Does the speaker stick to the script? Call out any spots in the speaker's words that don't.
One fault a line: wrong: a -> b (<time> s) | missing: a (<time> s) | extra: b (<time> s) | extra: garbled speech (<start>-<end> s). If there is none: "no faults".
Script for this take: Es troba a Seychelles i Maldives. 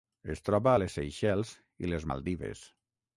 extra: les (0.8 s)
extra: les (1.9 s)